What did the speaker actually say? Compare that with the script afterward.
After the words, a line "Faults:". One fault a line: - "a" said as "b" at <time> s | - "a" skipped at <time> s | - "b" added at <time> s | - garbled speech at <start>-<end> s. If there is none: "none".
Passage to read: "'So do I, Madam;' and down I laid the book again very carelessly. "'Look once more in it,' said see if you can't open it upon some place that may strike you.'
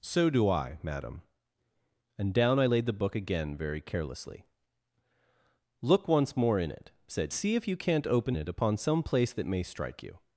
"'So do I, Madam;' and down I laid the book again very carelessly. "'Look once more in it,' said see if you can't open it upon some place that may strike you.'
Faults:
none